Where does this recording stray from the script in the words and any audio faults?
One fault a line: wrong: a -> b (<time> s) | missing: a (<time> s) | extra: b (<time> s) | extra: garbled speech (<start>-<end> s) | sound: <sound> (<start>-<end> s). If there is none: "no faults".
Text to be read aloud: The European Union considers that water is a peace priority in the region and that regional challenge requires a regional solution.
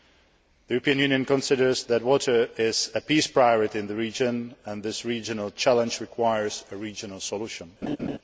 wrong: that -> this (4.8 s)
sound: laugh (7.8-8.2 s)